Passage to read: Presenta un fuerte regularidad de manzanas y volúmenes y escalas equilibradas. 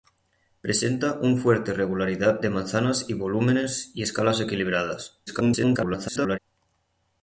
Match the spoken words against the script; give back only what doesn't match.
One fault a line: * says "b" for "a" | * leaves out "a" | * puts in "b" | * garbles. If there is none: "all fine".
* garbles